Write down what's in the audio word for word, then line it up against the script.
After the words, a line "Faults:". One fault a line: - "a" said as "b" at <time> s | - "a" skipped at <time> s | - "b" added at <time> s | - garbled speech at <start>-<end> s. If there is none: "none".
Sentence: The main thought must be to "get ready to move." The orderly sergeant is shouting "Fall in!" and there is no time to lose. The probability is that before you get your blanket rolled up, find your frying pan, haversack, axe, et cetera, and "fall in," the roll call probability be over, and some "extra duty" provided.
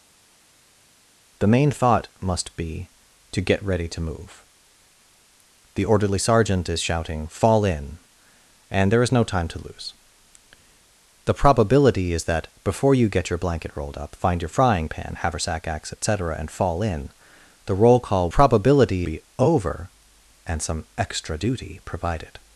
The main thought must be to "get ready to move." The orderly sergeant is shouting "Fall in!" and there is no time to lose. The probability is that before you get your blanket rolled up, find your frying pan, haversack, axe, et cetera, and "fall in," the roll call probability be over, and some "extra duty" provided.
Faults:
none